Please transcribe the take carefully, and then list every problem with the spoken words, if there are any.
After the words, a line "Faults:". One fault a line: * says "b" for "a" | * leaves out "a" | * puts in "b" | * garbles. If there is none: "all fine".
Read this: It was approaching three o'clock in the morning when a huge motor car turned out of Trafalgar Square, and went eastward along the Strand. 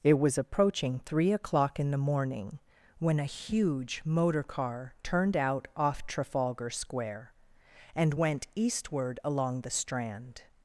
It was approaching three o'clock in the morning when a huge motor car turned out off Trafalgar Square, and went eastward along the Strand.
Faults:
* says "off" for "of"